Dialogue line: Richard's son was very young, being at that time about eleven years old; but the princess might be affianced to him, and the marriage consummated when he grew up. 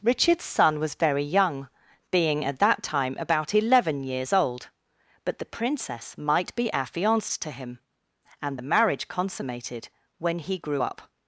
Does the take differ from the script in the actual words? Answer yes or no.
no